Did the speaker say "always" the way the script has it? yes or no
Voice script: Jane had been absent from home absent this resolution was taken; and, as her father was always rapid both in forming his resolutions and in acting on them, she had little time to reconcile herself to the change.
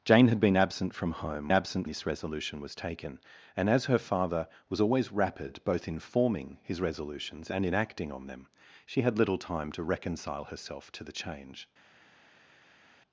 yes